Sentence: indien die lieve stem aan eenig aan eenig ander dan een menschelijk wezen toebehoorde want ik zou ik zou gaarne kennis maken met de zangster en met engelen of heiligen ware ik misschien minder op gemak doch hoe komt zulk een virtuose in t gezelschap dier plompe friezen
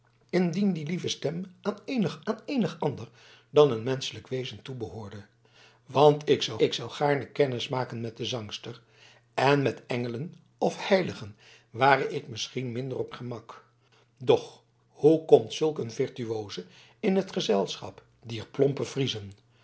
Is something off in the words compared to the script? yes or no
no